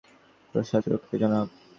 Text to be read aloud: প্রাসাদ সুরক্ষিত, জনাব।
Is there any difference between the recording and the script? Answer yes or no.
no